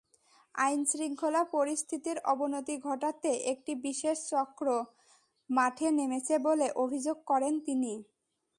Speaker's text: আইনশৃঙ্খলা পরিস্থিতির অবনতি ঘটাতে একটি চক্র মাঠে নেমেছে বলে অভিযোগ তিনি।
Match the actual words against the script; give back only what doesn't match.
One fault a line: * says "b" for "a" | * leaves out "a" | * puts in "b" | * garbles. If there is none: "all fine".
* puts in "বিশেষ"
* puts in "করেন"